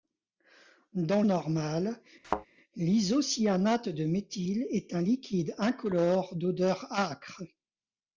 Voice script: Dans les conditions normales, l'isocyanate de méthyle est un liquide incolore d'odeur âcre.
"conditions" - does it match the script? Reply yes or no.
no